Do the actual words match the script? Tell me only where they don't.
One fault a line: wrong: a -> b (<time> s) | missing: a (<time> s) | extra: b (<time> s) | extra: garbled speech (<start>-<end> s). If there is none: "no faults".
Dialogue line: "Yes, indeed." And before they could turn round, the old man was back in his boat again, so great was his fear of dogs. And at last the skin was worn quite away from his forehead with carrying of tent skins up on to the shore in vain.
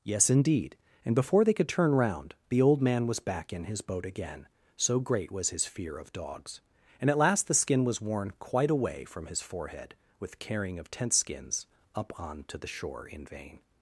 no faults